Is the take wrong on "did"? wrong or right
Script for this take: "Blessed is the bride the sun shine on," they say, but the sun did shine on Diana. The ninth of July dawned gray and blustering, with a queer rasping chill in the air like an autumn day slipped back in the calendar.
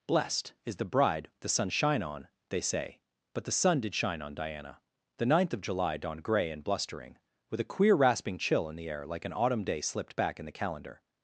right